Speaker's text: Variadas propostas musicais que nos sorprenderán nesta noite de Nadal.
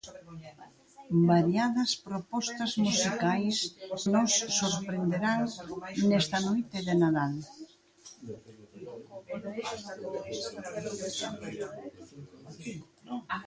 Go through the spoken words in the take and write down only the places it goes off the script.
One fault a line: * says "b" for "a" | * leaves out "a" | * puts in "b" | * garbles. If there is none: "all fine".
* leaves out "que"